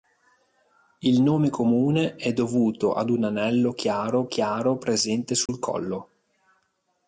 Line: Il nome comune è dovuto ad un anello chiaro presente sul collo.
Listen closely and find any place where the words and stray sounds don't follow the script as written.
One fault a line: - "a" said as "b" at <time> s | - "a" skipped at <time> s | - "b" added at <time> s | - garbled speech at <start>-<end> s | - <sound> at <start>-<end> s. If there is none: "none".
- "chiaro" added at 4.2 s
- dropout at 5.5-5.5 s